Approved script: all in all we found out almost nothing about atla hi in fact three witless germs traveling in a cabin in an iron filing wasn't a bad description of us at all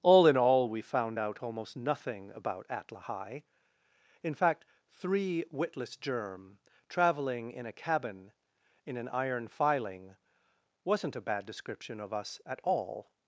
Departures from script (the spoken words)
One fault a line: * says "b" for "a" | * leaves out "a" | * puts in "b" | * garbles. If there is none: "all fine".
* says "germ" for "germs"